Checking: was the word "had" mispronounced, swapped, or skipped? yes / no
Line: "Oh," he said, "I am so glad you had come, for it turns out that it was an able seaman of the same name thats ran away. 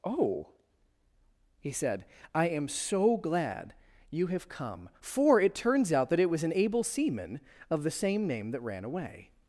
yes